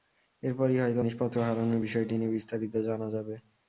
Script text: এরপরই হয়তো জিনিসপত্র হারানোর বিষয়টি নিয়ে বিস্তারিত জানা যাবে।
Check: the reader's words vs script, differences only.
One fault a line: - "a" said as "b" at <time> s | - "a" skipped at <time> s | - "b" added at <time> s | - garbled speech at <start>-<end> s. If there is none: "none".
none